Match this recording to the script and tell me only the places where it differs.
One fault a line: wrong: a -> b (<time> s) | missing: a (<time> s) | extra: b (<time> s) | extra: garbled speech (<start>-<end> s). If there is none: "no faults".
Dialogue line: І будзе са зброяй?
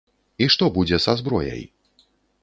extra: што (0.5 s)